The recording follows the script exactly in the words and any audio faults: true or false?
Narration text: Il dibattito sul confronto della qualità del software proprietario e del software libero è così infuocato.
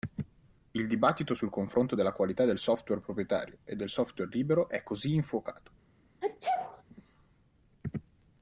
false